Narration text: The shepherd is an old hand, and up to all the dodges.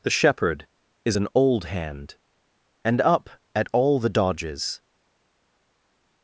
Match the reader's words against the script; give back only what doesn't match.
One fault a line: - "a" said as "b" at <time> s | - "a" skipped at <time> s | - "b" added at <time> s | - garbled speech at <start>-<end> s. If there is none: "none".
- "to" said as "at" at 3.5 s